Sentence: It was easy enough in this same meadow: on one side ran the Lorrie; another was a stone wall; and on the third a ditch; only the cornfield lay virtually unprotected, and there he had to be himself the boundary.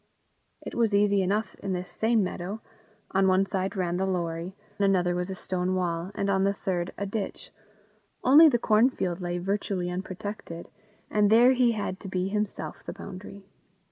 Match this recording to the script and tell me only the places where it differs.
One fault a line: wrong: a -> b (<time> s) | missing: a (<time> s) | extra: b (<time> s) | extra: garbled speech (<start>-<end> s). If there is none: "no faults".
no faults